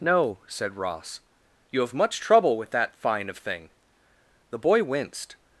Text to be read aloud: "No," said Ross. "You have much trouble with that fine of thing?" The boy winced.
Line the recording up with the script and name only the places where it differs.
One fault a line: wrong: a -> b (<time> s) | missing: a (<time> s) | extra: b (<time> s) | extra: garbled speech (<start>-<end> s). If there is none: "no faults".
no faults